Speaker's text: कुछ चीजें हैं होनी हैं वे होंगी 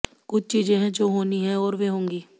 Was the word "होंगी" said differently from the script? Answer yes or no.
no